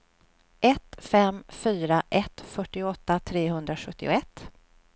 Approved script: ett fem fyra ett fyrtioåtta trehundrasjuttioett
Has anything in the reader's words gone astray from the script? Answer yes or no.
no